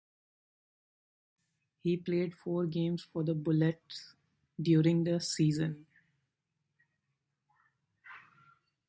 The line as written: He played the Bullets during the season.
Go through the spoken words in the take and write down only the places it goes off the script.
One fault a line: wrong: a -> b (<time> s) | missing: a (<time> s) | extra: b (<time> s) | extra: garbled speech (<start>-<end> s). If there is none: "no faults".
extra: four games for (2.3 s)